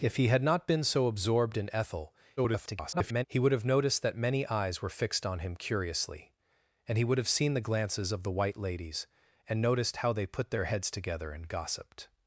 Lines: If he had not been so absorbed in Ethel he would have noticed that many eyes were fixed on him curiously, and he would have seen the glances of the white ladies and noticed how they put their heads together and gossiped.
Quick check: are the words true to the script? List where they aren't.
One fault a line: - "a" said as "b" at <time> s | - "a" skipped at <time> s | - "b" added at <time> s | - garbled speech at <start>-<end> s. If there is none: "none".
- garbled speech at 2.4-3.3 s